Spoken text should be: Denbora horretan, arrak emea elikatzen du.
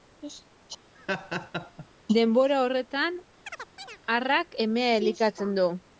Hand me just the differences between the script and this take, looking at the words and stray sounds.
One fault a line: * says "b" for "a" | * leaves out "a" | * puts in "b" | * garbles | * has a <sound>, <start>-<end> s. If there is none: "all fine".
* has a laugh, 0.9-1.9 s
* has a chirp, 3.5-4.0 s